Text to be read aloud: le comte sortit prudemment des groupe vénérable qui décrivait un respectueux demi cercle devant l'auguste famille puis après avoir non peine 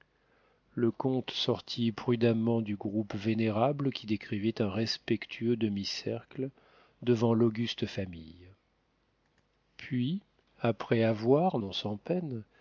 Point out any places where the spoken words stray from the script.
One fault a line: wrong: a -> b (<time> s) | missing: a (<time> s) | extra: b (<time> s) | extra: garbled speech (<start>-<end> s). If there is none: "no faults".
wrong: des -> du (2.6 s)
extra: sans (11.7 s)